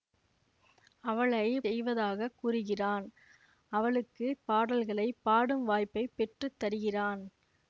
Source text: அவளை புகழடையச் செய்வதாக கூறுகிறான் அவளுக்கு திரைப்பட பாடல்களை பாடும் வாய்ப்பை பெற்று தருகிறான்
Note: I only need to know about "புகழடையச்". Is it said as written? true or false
false